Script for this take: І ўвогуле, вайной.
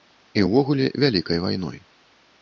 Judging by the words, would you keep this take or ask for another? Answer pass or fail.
fail